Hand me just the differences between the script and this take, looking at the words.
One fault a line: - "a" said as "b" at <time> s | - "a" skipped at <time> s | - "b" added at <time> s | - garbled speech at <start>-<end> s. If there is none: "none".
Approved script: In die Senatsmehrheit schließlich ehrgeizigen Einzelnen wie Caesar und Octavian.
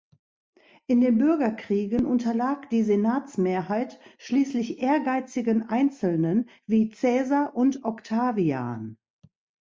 - "den Bürgerkriegen unterlag" added at 1.0 s